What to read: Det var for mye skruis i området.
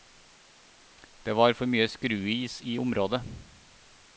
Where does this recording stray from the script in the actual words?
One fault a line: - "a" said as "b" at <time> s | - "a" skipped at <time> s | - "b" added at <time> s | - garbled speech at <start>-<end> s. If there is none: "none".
none